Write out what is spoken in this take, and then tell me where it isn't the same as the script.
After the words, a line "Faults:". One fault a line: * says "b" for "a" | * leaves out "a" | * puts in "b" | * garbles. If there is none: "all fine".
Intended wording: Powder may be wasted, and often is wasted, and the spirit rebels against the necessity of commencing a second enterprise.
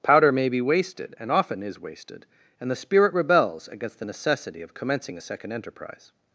Powder may be wasted, and often is wasted, and the spirit rebels against the necessity of commencing a second enterprise.
Faults:
all fine